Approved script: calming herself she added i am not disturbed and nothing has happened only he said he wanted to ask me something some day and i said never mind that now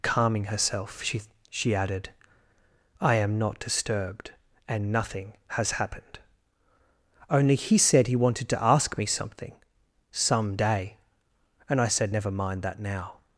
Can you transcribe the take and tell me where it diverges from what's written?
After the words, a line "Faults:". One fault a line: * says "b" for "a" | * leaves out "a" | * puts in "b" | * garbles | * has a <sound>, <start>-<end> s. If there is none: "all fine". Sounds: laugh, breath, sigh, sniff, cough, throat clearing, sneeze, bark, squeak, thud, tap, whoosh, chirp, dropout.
calming herself she she added i am not disturbed and nothing has happened only he said he wanted to ask me something some day and i said never mind that now
Faults:
* puts in "she"